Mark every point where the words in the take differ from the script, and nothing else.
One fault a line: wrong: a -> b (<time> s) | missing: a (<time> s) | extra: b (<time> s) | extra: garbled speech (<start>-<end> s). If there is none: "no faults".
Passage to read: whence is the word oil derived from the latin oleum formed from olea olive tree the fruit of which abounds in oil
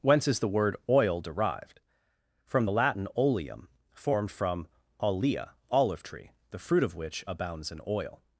no faults